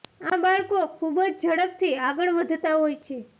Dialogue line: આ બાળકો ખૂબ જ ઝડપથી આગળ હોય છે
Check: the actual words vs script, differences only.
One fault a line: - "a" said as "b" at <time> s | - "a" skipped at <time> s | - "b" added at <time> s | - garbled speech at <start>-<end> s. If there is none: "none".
- "વધતા" added at 2.4 s